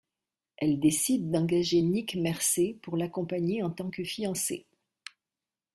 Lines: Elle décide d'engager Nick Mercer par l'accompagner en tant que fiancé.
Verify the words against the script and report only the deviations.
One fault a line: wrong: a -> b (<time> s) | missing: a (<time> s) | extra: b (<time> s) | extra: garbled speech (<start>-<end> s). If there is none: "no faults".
wrong: par -> pour (2.8 s)